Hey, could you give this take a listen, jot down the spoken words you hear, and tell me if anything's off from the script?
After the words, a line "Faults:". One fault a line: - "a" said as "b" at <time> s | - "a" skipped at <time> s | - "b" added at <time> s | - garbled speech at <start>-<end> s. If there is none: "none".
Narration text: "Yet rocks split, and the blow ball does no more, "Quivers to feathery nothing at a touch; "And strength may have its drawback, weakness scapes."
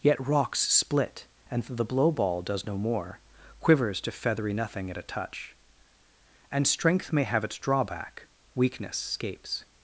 "Yet rocks split, and the blow ball does no more, "Quivers to feathery nothing at a touch; "And strength may have its drawback, weakness scapes."
Faults:
none